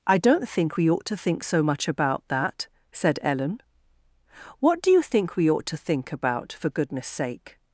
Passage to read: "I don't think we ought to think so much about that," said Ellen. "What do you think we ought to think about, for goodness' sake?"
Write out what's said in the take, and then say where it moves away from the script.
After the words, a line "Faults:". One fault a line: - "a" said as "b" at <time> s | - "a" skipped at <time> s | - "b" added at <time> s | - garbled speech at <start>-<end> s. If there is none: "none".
"I don't think we ought to think so much about that," said Ellen. "What do you think we ought to think about, for goodness' sake?"
Faults:
none